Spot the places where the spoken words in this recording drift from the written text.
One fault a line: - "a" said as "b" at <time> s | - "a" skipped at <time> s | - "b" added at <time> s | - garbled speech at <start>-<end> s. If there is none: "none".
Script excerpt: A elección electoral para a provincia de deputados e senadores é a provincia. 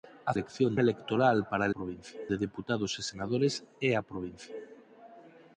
none